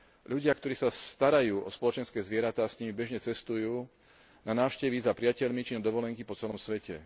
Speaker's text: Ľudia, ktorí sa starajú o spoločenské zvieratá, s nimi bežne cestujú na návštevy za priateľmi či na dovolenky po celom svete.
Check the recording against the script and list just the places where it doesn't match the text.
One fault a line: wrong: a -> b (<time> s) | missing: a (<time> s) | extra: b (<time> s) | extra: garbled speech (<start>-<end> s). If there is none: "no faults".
no faults